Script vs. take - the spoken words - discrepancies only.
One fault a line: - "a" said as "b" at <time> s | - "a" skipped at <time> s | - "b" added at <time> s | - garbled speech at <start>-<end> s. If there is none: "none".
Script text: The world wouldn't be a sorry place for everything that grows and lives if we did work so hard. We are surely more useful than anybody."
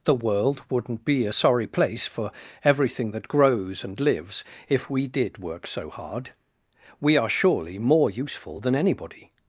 none